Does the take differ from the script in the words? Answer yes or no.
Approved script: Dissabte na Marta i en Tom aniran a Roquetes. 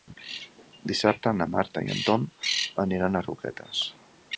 no